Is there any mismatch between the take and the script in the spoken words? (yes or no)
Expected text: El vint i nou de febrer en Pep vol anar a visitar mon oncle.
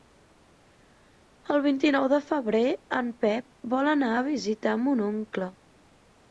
no